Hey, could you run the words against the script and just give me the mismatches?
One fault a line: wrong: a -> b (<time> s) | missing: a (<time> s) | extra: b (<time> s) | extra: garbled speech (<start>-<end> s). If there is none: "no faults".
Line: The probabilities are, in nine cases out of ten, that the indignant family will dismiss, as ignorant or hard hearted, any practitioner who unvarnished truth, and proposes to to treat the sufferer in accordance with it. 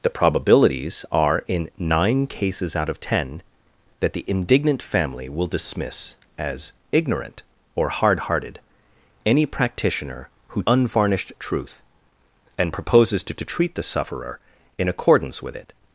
no faults